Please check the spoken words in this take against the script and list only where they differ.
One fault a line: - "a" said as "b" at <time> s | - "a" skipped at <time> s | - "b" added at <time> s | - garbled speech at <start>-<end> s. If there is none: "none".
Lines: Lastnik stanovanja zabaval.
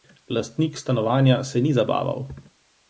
- "se ni" added at 1.4 s